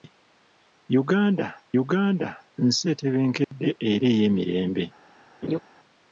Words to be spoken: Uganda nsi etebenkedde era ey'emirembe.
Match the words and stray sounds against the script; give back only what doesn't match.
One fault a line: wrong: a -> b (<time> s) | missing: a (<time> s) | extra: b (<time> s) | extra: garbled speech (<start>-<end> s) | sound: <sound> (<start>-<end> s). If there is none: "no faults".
extra: uganda (1.8 s)
sound: dropout (3.4-3.5 s)
sound: laugh (5.4-5.6 s)